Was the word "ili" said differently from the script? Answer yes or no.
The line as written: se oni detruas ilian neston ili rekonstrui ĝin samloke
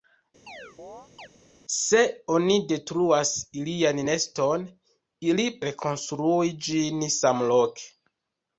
no